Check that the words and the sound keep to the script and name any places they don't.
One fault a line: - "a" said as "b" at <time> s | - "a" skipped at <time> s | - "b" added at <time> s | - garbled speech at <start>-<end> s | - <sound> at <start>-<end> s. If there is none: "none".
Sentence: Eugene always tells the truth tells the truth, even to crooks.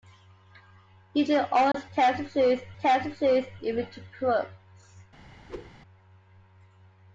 - dropout at 1.7-1.7 s
- whoosh at 5.5-5.7 s